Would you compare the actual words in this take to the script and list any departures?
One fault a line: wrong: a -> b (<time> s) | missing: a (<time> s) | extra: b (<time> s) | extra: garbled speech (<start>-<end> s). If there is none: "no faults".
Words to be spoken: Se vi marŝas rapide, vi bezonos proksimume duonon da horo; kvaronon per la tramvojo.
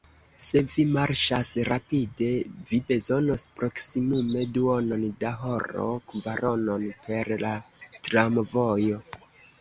no faults